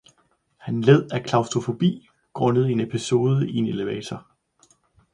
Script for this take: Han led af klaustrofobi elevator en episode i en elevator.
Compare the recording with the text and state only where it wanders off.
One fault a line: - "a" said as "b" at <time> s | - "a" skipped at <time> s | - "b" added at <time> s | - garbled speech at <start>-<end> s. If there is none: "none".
- "elevator" said as "grundet" at 2.3 s